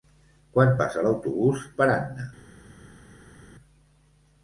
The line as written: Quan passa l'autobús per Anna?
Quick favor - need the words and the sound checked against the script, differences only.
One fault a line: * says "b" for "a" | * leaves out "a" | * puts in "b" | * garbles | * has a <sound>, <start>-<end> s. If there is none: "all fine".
all fine